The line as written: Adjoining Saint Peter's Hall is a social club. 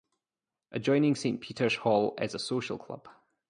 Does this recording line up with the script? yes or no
yes